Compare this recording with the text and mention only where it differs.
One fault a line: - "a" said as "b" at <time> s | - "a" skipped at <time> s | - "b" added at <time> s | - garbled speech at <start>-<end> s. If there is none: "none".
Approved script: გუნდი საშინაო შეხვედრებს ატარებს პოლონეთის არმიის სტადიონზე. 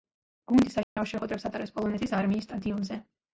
none